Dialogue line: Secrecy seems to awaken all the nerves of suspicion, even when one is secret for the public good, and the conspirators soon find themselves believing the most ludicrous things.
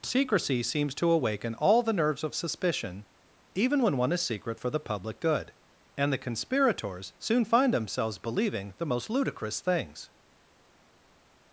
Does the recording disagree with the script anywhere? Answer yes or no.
no